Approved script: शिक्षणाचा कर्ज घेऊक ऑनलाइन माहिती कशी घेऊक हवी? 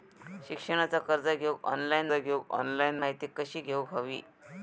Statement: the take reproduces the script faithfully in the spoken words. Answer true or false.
false